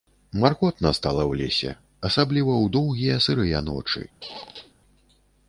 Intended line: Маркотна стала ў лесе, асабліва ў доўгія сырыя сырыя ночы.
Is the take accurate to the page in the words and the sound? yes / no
no